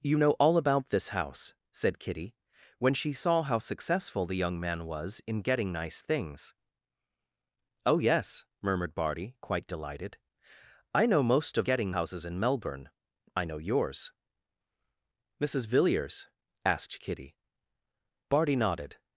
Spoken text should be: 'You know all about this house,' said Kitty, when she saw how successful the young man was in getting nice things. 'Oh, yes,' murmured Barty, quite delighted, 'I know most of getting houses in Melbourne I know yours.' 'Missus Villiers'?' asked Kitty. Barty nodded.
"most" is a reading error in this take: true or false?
false